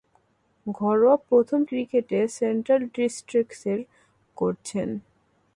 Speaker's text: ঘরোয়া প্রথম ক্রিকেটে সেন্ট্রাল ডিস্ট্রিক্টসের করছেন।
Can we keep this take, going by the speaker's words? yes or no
yes